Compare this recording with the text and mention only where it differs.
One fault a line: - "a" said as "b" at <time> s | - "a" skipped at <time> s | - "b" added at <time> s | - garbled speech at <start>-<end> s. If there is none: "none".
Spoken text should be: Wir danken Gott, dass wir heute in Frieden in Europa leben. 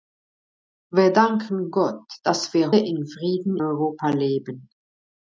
- "heute" skipped at 2.7 s
- "in" skipped at 3.6 s